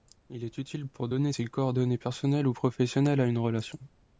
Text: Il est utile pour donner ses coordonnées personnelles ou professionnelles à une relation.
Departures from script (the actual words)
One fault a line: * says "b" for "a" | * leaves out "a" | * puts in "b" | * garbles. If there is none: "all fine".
all fine